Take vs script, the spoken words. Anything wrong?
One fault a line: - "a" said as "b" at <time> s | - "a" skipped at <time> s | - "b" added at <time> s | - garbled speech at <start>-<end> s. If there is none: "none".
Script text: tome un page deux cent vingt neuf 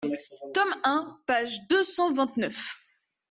none